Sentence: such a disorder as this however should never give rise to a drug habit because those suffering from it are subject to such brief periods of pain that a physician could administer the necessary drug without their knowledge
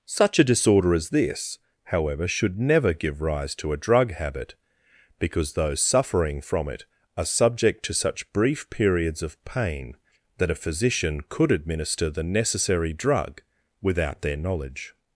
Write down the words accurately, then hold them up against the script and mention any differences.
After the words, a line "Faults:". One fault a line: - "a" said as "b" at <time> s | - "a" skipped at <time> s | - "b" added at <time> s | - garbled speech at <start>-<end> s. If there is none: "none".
such a disorder as this however should never give rise to a drug habit because those suffering from it are subject to such brief periods of pain that a physician could administer the necessary drug without their knowledge
Faults:
none